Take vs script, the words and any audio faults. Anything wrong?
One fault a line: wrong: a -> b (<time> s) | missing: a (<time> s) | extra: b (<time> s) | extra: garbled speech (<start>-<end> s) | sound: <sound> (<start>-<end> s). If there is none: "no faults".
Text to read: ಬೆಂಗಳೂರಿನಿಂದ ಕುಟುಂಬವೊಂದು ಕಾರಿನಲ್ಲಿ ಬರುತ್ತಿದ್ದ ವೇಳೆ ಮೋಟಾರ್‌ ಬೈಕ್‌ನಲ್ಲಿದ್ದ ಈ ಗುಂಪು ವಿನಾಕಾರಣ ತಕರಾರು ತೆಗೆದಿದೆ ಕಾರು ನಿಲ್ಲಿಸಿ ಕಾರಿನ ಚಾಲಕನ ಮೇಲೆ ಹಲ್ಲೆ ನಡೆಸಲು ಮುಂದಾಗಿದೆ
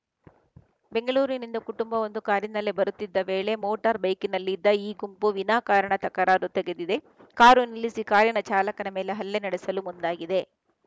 no faults